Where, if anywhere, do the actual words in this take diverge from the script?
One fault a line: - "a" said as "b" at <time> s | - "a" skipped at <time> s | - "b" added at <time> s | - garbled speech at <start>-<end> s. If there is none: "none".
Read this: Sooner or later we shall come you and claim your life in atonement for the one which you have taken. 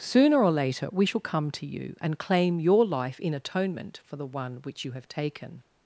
- "to" added at 1.5 s